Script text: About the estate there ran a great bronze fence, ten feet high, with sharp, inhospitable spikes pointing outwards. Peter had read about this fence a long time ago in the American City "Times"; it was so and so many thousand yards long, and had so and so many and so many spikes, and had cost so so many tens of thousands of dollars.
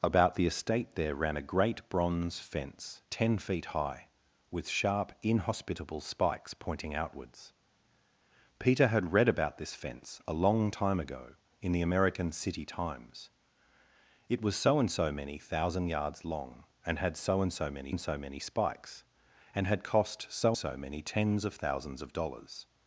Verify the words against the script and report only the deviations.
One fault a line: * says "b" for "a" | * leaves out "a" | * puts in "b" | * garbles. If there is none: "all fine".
all fine